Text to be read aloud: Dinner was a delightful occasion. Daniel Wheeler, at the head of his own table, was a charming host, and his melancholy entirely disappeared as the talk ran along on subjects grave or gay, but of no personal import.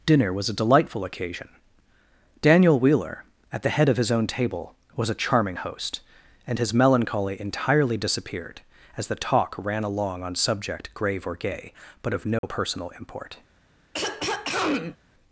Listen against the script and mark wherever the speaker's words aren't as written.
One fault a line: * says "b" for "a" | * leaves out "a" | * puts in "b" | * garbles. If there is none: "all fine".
* says "subject" for "subjects"